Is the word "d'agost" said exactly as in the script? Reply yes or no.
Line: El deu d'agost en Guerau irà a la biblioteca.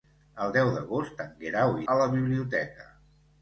yes